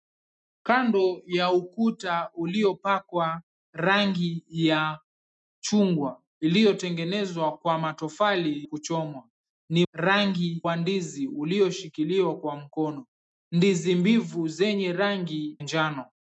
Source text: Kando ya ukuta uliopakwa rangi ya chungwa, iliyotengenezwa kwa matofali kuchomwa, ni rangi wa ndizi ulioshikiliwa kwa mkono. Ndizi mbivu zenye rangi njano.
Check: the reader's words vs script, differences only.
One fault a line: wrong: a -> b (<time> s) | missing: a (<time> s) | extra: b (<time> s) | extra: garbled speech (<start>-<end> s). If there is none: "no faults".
no faults